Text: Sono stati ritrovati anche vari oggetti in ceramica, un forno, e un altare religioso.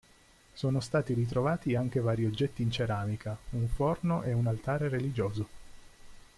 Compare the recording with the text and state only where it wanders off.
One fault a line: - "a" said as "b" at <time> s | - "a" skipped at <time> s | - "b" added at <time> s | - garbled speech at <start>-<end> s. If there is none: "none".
none